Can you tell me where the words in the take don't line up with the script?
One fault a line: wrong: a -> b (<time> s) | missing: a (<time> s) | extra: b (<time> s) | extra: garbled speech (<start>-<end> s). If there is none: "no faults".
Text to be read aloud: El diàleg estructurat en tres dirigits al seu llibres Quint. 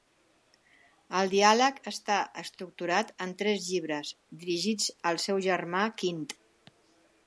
extra: està (1.9 s)
extra: llibres (3.7 s)
wrong: llibres -> germà (5.5 s)